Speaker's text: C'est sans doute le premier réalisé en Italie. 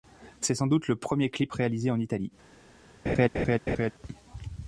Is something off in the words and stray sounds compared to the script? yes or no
yes